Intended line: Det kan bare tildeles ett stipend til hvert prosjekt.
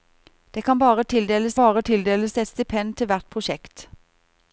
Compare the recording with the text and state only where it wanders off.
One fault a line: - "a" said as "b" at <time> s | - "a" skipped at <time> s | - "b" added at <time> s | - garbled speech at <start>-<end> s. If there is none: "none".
- "bare tildeles" added at 1.6 s